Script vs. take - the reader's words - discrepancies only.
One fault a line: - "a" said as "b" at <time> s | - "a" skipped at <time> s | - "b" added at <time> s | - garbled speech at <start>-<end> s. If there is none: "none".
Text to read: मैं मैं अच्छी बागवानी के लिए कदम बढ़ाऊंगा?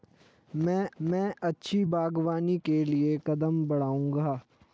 none